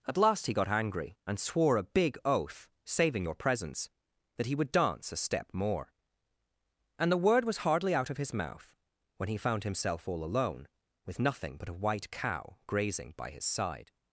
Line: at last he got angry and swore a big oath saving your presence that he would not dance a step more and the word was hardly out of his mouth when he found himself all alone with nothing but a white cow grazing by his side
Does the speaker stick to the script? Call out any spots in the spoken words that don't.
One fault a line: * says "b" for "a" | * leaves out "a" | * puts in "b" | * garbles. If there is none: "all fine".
* leaves out "not"